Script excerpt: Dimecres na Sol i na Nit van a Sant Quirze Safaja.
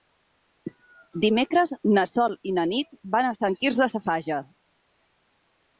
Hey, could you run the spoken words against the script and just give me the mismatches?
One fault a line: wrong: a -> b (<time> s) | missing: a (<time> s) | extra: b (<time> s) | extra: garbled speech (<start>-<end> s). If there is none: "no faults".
no faults